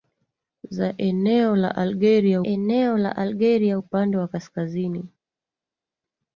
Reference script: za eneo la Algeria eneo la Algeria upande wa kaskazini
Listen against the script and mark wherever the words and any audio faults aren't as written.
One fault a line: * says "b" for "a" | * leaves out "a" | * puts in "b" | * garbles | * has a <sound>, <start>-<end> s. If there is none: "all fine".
all fine